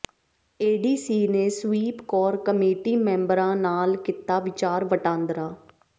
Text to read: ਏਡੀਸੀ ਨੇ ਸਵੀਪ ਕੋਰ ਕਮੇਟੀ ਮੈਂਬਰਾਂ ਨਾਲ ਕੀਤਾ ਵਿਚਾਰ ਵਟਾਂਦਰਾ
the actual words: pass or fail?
pass